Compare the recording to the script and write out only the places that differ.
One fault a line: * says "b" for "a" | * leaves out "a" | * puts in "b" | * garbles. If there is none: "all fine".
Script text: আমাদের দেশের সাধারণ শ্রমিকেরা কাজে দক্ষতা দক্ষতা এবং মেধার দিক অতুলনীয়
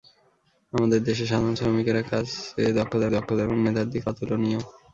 all fine